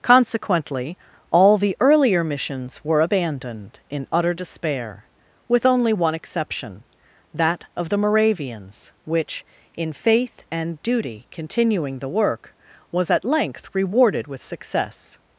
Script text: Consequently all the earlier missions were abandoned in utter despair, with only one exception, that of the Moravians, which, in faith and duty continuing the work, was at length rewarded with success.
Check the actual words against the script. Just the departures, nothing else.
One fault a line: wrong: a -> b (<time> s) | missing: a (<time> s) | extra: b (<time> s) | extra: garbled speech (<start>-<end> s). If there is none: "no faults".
no faults